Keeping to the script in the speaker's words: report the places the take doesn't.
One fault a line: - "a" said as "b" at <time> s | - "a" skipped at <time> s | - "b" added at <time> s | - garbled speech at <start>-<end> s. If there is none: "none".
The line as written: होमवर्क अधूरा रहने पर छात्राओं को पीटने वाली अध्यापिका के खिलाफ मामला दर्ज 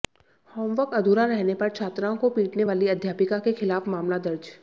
none